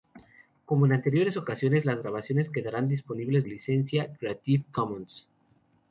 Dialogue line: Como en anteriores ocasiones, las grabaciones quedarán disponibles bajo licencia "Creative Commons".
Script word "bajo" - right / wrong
wrong